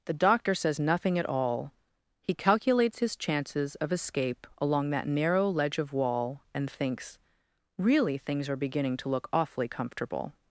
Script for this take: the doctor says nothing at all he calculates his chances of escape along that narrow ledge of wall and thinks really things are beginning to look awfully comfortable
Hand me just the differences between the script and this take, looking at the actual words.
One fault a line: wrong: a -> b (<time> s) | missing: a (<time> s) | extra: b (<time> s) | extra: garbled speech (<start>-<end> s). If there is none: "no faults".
no faults